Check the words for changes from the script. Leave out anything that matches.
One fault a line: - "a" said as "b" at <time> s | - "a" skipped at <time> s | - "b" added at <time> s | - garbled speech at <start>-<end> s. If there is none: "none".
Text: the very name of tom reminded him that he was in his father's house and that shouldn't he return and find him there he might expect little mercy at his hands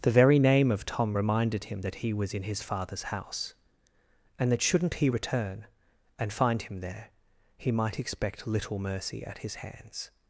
none